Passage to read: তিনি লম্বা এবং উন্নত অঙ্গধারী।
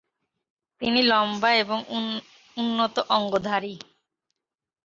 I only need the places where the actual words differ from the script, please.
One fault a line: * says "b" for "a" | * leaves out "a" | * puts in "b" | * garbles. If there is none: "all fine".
all fine